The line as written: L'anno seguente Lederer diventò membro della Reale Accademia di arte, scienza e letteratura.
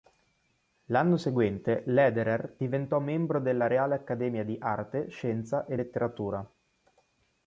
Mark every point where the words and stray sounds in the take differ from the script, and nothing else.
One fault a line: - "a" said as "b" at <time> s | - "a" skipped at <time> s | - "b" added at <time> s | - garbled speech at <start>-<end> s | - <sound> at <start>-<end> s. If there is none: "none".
none